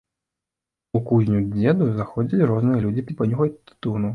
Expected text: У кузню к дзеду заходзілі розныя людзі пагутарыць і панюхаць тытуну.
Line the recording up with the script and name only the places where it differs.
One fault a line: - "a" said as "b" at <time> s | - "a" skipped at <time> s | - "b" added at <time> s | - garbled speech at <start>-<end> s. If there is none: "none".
- "пагутарыць" skipped at 3.1 s